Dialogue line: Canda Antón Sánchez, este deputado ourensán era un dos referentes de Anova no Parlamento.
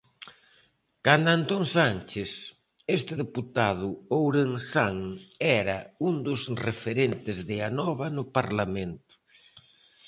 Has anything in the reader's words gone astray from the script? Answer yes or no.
no